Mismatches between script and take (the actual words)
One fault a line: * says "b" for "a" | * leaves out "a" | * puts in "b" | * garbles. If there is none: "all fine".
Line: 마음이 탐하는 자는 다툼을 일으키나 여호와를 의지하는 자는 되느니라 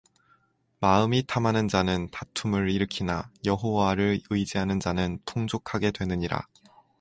* puts in "풍족하게"